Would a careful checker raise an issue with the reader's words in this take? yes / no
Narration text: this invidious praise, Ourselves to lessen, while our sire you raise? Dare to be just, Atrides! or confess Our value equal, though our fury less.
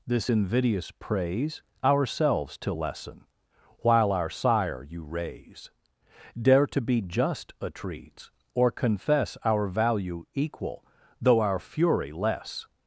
no